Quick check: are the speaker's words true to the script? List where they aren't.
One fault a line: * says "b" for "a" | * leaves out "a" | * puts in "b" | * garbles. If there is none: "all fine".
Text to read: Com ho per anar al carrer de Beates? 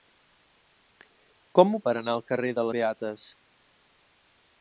all fine